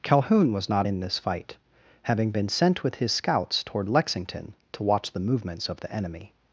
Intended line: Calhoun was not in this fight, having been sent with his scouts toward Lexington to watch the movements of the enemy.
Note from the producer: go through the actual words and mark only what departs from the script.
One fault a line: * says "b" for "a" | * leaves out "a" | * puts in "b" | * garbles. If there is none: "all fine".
all fine